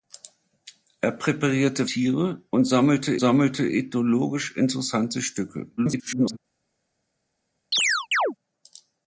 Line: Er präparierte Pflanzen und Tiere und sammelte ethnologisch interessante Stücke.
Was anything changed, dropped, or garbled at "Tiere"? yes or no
yes